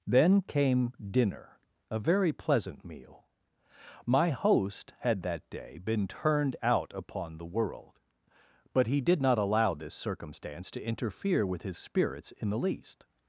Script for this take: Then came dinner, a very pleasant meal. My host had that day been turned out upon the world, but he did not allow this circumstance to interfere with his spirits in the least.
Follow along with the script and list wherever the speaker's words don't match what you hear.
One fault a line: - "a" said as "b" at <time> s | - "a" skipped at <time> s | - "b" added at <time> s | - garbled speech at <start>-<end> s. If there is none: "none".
none